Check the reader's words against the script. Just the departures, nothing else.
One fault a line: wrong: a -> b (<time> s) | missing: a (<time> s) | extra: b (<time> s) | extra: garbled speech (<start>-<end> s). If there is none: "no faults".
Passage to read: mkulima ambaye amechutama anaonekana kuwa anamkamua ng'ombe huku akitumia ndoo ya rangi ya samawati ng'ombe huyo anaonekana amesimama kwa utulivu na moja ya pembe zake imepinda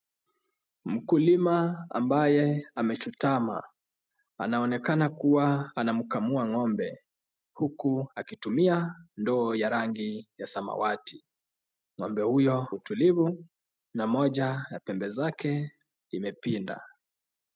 missing: anaonekana amesimama kwa (12.7 s)